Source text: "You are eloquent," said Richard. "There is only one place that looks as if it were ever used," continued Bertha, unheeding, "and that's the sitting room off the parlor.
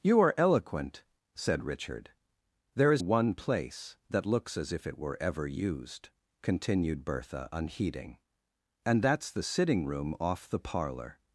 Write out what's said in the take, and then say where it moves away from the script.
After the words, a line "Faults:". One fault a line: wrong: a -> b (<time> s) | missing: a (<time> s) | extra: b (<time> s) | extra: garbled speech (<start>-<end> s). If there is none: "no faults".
"You are eloquent," said Richard. "There is one place that looks as if it were ever used," continued Bertha, unheeding, "and that's the sitting room off the parlor.
Faults:
missing: only (3.0 s)